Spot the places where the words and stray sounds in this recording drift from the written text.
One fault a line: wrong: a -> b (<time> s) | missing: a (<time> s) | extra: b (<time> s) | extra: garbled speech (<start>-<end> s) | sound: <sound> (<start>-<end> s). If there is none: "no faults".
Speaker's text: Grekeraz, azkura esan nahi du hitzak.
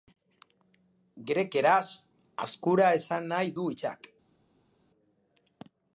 no faults